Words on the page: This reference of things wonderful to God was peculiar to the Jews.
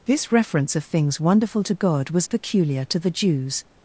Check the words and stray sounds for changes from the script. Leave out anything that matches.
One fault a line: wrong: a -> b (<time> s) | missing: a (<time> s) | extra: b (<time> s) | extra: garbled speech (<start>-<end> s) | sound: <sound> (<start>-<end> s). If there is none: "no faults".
no faults